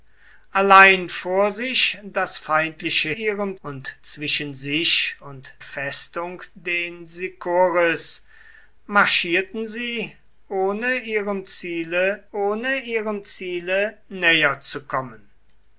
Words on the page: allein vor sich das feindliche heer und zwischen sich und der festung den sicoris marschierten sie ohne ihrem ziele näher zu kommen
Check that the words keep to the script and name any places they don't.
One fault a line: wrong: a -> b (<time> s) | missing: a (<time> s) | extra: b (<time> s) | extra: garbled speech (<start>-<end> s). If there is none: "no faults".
wrong: heer -> ihrem (3.1 s)
missing: der (5.5 s)
extra: ohne ihrem ziele (12.3 s)